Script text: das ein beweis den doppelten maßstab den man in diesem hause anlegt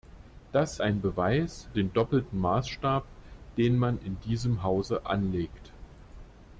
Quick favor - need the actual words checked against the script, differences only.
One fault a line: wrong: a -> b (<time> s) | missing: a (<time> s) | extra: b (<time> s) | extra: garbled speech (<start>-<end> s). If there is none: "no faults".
no faults